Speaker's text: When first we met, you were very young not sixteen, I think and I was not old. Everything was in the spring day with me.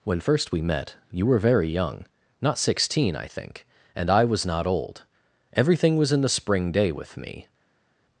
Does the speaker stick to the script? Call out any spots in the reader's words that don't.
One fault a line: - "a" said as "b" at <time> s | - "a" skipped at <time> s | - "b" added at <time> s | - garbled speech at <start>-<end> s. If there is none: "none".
none